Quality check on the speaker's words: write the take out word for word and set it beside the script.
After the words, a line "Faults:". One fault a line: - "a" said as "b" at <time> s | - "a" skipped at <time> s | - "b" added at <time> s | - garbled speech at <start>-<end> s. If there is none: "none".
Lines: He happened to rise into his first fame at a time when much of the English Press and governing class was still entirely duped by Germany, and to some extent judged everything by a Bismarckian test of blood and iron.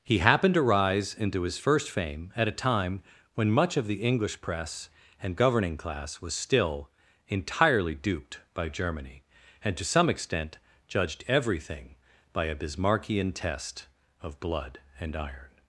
He happened to rise into his first fame at a time when much of the English Press and governing class was still entirely duped by Germany, and to some extent judged everything by a Bismarckian test of blood and iron.
Faults:
none